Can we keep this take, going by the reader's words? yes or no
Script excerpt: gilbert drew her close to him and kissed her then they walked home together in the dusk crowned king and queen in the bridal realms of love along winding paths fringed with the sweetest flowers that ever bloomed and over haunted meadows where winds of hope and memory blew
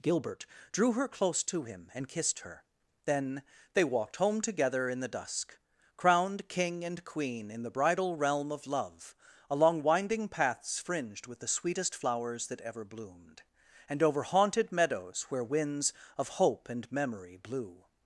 no